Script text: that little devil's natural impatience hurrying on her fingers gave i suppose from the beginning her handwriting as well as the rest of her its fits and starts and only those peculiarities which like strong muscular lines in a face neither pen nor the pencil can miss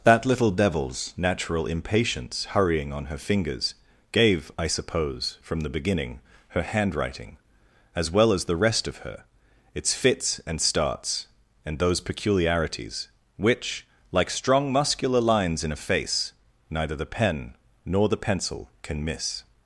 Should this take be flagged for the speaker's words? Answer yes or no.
yes